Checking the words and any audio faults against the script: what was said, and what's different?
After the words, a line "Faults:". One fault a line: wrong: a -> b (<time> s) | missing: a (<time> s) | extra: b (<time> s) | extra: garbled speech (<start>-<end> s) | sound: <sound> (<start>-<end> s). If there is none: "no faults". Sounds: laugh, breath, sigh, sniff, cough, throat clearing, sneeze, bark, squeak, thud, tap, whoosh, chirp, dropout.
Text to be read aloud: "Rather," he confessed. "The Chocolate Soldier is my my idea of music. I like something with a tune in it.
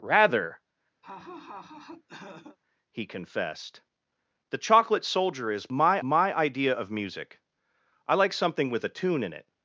"Rather," he confessed. "The Chocolate Soldier is my my idea of music. I like something with a tune in it.
Faults:
sound: laugh (1.0-2.6 s)